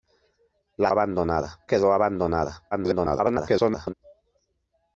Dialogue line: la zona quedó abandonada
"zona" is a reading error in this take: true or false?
true